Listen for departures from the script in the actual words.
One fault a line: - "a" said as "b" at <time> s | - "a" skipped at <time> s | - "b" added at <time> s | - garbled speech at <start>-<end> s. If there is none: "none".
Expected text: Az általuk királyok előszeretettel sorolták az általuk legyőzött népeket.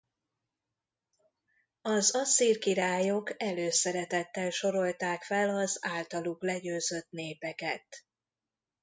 - "általuk" said as "asszír" at 2.1 s
- "fel" added at 5.2 s